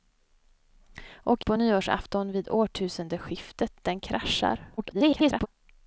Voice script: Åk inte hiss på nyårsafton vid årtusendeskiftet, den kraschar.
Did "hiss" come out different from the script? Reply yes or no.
yes